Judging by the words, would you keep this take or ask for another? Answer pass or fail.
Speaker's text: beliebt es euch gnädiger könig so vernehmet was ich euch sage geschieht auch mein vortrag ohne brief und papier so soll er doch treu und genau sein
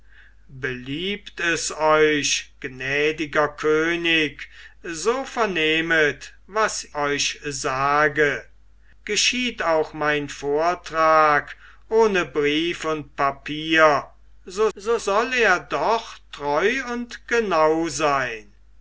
fail